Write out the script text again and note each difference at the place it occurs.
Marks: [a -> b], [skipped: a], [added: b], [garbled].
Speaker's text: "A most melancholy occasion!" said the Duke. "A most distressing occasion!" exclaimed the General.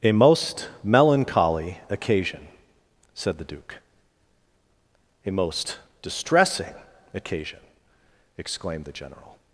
"A most melancholy occasion!" said the Duke. "A most distressing occasion!" exclaimed the General.